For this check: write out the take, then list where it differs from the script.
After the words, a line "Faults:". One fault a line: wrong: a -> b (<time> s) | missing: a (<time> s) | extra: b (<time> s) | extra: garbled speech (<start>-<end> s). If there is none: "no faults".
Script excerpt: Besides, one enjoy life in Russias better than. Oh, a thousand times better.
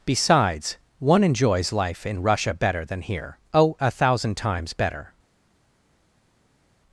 Besides, one enjoys life in Russia better than here. Oh, a thousand times better.
Faults:
wrong: enjoy -> enjoys (1.2 s)
wrong: Russias -> Russia (2.2 s)
extra: here (3.0 s)